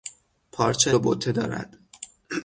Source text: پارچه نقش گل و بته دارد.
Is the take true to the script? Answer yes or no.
no